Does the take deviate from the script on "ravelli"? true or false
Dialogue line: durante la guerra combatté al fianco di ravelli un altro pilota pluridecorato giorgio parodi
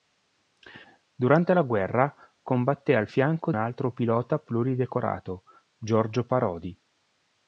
true